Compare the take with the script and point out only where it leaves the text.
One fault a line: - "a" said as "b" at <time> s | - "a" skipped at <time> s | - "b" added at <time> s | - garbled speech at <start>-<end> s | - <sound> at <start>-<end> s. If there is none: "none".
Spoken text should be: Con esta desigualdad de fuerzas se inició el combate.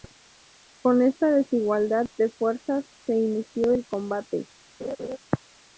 - laugh at 4.8-5.2 s